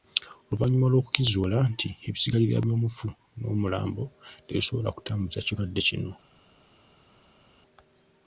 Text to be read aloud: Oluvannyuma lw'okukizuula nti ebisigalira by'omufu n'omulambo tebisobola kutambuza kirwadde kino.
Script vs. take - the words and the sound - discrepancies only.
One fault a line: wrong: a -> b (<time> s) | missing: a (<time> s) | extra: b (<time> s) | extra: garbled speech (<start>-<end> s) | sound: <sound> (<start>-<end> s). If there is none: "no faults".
no faults